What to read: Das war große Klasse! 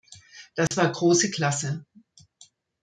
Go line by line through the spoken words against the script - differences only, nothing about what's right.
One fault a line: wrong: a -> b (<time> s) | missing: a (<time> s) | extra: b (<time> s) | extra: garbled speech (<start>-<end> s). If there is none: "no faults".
no faults